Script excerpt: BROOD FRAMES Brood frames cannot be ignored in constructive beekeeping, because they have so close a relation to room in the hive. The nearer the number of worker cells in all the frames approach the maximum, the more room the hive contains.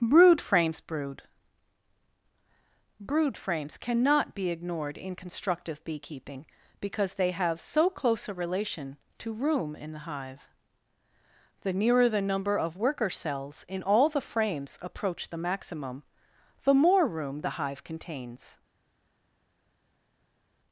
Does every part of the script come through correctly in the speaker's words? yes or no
no